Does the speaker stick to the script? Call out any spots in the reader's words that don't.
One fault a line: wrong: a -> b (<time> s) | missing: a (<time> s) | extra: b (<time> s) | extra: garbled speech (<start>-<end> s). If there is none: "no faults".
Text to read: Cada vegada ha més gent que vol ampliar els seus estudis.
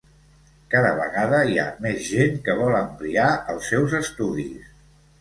extra: hi (1.5 s)